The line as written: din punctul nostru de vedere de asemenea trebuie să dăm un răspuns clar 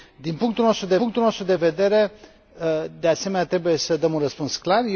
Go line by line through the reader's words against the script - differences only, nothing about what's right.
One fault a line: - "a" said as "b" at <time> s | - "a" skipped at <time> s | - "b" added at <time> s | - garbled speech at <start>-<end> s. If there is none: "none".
- "punctul nostru de" added at 0.9 s